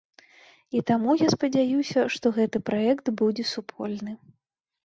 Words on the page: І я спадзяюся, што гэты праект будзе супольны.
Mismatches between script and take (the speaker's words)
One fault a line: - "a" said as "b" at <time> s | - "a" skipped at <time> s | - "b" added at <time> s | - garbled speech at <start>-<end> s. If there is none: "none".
- "таму" added at 0.9 s